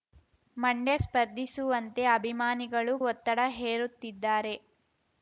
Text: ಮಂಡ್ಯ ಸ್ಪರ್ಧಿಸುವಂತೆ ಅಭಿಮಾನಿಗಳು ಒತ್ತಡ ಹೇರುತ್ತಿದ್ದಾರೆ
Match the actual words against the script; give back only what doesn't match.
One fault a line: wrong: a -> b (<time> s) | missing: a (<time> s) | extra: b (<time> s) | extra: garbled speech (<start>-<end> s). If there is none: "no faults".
no faults